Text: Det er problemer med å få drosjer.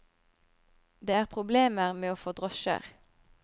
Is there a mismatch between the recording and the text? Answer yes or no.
no